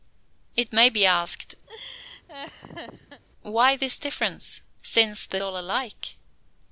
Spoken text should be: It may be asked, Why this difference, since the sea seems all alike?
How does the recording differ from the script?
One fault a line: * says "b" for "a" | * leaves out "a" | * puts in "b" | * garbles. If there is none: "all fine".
* leaves out "sea seems"